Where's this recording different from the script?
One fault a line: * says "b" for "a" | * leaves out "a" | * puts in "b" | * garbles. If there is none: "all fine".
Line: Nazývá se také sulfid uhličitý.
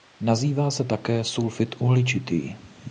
all fine